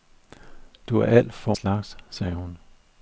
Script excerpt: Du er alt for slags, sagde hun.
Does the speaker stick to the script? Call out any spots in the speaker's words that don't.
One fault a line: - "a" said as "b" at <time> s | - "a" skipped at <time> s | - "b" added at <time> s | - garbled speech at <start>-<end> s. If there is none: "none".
none